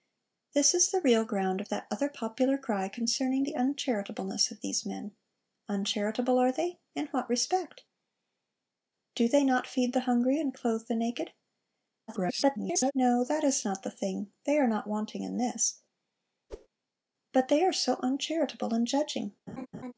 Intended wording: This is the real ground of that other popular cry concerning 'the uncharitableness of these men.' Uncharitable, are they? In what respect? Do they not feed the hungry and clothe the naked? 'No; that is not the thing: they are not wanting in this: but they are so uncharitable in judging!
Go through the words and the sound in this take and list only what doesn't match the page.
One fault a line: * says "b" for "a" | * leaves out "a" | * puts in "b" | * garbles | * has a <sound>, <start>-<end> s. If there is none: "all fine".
* garbles
* has a whoosh, 16.5-16.7 s
* has a laugh, 19.5-19.9 s